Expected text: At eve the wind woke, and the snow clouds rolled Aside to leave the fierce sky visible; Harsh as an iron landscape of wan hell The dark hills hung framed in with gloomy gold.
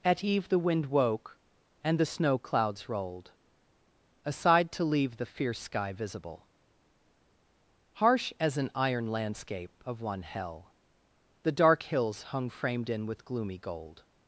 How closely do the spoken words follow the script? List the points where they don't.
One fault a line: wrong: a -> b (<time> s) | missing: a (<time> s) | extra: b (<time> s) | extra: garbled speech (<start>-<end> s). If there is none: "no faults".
wrong: wan -> one (10.0 s)